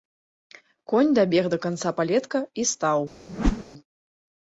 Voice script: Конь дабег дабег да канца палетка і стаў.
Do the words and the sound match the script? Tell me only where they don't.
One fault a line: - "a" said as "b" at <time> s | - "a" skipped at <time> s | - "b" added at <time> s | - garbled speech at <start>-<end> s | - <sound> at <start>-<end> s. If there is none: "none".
- "дабег" skipped at 1.4 s
- whoosh at 3.3-3.6 s